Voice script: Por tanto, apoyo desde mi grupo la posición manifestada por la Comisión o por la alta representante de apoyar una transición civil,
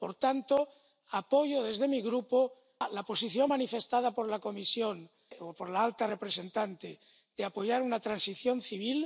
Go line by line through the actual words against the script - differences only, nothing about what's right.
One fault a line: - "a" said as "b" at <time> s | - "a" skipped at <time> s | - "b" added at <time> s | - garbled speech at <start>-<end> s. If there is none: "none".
none